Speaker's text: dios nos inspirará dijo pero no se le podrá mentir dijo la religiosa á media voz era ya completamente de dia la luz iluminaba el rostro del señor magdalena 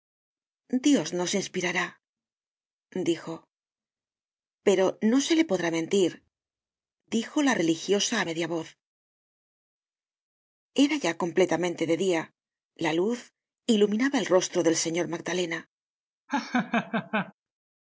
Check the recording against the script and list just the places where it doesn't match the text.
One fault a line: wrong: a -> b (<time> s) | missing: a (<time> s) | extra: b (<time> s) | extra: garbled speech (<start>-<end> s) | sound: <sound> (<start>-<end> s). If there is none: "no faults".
sound: laugh (16.3-17.3 s)